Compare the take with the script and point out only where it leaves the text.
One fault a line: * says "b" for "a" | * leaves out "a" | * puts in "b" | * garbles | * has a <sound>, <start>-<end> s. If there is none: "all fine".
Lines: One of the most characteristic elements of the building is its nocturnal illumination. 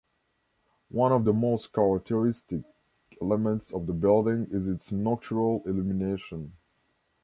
all fine